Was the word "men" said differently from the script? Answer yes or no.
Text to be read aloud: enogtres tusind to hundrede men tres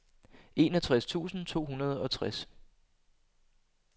yes